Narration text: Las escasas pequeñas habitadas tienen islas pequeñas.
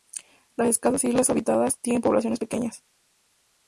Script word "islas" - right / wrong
wrong